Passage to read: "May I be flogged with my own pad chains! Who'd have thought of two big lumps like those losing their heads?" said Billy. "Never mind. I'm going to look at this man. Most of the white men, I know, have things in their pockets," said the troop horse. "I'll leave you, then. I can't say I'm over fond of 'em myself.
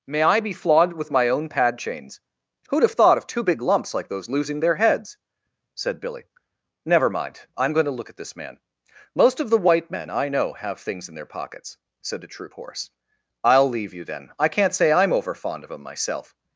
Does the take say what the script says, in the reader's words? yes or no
yes